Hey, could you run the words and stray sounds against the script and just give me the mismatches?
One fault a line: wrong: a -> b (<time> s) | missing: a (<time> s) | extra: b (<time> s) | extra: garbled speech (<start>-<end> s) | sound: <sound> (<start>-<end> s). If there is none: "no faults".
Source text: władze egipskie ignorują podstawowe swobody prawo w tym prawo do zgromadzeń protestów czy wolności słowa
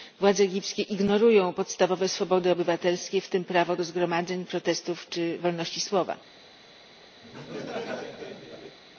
wrong: prawo -> obywatelskie (2.5 s)
sound: laugh (7.2-8.8 s)